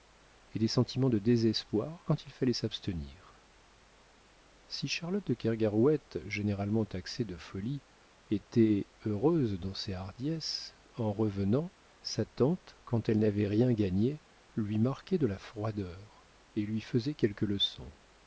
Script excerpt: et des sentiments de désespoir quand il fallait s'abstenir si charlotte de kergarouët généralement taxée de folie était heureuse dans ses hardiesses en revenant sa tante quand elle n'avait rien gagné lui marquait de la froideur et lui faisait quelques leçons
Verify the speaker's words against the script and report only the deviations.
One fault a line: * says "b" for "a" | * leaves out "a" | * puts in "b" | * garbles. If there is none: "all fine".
all fine